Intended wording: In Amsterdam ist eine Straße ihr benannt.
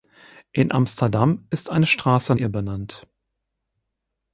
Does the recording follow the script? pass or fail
pass